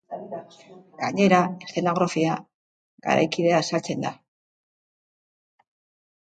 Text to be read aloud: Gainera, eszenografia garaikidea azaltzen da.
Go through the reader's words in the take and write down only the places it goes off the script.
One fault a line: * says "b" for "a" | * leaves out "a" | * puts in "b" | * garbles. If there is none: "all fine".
all fine